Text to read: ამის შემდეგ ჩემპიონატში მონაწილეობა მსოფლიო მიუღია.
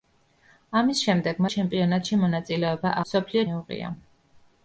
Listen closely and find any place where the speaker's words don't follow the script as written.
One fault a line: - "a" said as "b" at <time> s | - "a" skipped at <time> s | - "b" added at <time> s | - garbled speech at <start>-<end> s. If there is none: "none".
none